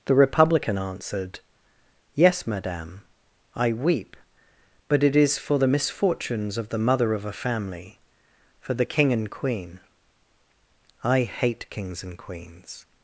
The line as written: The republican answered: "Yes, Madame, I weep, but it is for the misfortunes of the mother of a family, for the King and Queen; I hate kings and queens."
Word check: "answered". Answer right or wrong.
right